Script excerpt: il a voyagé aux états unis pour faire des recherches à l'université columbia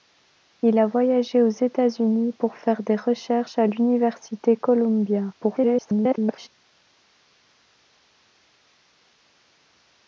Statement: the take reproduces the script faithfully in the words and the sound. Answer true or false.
false